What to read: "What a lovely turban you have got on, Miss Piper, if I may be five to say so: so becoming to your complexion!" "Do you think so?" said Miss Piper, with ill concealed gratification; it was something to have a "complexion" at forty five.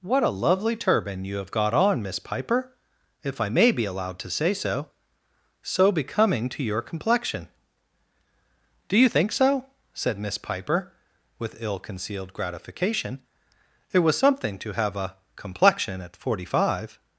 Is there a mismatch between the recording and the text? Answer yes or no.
yes